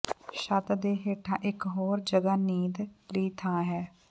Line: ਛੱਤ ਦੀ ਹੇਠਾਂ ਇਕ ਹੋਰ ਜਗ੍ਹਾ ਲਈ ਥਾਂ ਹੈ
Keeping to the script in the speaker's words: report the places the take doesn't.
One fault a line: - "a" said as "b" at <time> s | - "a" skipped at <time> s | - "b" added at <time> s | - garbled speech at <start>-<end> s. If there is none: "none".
- "ਦੀ" said as "ਦੇ" at 0.7 s
- "ਨੀਂਦ" added at 2.4 s